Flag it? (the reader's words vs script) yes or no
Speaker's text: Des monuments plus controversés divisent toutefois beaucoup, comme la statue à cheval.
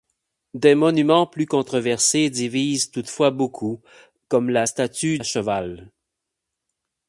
no